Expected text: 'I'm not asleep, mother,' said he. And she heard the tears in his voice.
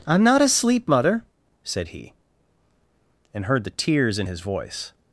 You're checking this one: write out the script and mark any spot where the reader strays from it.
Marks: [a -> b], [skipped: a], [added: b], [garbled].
'I'm not asleep, mother,' said he. And [skipped: she] heard the tears in his voice.